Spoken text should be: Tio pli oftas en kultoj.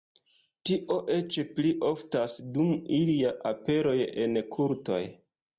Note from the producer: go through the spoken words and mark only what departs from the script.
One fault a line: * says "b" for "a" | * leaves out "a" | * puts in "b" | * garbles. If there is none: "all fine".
* puts in "eĉ"
* puts in "dum ilia aperoj"